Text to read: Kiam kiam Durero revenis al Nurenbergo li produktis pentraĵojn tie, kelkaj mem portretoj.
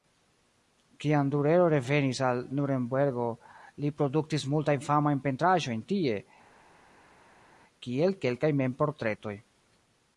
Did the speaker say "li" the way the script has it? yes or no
yes